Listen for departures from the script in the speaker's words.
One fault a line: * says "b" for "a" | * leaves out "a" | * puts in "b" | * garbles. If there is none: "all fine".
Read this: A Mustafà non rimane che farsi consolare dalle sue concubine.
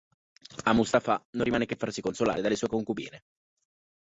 all fine